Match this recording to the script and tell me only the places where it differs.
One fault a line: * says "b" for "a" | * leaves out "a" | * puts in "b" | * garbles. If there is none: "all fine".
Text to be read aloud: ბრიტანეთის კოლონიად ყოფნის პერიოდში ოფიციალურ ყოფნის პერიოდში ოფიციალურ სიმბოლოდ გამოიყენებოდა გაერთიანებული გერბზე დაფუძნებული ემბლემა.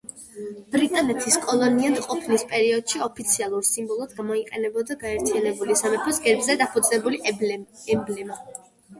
* leaves out "ყოფნის პერიოდში ოფიციალურ"
* puts in "სამეფოს"